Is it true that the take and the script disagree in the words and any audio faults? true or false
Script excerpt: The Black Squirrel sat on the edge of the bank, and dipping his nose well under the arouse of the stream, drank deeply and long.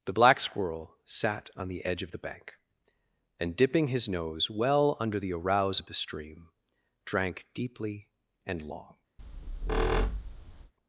true